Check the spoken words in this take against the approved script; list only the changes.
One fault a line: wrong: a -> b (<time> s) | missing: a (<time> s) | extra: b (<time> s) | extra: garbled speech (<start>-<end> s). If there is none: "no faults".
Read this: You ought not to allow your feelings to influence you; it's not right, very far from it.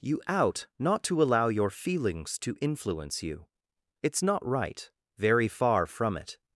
wrong: ought -> out (0.3 s)